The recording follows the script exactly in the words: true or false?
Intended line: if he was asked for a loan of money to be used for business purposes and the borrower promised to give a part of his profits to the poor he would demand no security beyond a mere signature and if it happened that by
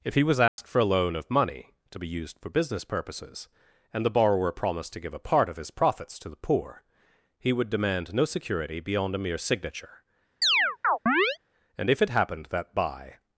true